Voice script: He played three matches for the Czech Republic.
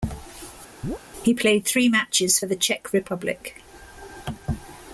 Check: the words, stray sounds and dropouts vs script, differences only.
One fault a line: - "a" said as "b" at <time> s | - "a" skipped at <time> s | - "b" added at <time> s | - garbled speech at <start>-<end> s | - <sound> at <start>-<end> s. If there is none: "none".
- chirp at 0.8-1.0 s